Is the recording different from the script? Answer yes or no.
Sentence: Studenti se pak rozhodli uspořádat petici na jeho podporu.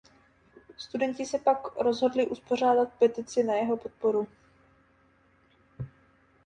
no